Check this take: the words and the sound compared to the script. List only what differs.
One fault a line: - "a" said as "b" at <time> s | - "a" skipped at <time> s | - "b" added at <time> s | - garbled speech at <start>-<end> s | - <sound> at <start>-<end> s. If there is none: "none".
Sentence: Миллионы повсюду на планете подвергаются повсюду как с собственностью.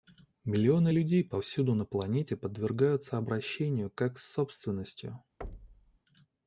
- "людей" added at 0.9 s
- "повсюду" said as "обращению" at 3.2 s
- thud at 5.4-6.0 s